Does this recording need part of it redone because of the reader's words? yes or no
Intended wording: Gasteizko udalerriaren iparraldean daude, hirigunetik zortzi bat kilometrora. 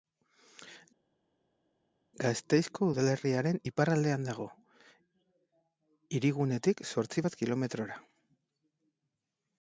yes